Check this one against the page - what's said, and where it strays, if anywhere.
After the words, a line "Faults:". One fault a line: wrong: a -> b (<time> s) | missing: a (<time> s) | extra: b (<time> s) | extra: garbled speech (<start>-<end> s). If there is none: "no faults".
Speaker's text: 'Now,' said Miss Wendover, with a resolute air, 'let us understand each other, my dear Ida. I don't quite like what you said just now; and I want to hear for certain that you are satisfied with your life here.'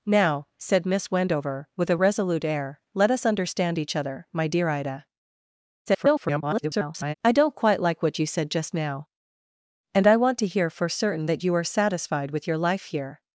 'Now,' said Miss Wendover, with a resolute air, 'let us understand each other, my dear Ida. [garbled] I don't quite like what you said just now; and I want to hear for certain that you are satisfied with your life here.'
Faults:
extra: garbled speech (5.9-7.1 s)